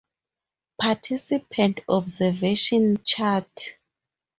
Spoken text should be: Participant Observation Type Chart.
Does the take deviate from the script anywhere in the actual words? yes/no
yes